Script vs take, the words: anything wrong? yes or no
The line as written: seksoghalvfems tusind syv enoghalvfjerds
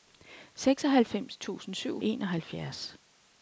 no